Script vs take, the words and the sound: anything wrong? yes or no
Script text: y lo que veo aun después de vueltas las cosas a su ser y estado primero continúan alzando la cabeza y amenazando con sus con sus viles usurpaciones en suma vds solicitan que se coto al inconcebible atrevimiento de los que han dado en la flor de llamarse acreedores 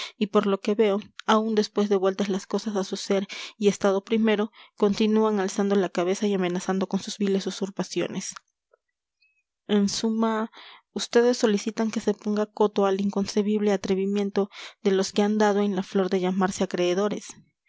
yes